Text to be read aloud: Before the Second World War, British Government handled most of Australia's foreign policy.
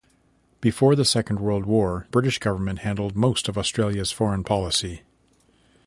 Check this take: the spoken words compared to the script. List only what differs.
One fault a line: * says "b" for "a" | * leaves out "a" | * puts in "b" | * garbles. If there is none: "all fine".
all fine